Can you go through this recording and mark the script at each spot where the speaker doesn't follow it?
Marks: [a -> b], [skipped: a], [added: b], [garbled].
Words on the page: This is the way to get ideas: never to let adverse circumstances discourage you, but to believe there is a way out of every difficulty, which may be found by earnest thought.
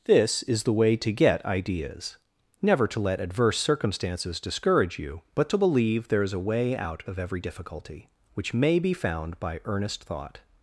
This is the way to get ideas: never to let adverse circumstances discourage you, but to believe there is a way out of every difficulty, which may be found by earnest thought.